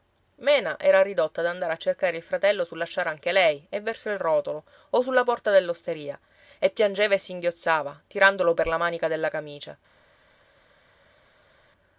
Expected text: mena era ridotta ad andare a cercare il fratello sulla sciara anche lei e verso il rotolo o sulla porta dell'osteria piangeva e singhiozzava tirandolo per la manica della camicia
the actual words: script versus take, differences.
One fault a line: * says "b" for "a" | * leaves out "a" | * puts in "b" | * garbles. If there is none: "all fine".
* puts in "e"